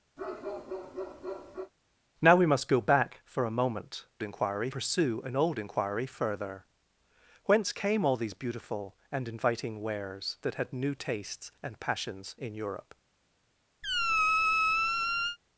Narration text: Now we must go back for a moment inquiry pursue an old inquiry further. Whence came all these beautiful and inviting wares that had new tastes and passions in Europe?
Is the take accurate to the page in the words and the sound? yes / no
no